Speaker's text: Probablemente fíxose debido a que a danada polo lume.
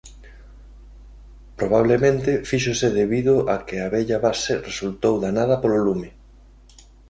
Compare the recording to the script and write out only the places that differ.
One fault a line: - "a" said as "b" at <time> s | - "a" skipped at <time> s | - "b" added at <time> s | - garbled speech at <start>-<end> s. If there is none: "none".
- "vella base resultou" added at 4.0 s